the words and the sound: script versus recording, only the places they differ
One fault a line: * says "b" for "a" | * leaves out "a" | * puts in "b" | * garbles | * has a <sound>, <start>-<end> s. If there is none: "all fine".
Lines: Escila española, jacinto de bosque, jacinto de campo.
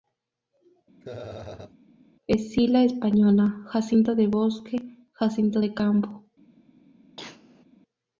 * has a laugh, 1.0-1.8 s
* has a cough, 7.2-7.6 s